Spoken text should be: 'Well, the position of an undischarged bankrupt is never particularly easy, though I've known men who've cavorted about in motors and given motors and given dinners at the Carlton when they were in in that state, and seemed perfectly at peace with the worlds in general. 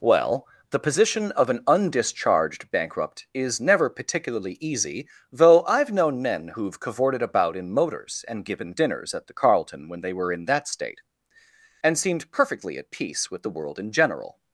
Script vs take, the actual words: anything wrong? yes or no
yes